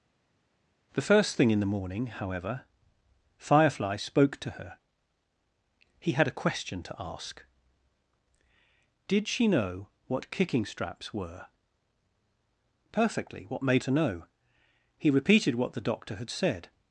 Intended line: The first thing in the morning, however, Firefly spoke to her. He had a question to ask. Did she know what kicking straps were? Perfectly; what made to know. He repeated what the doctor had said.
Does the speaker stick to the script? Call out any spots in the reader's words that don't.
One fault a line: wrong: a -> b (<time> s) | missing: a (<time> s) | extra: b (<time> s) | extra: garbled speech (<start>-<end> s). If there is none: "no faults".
no faults